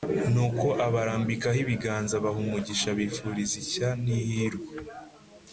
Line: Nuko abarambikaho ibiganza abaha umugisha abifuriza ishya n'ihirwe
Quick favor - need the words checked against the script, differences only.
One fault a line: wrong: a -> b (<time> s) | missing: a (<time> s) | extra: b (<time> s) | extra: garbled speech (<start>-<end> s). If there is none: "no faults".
no faults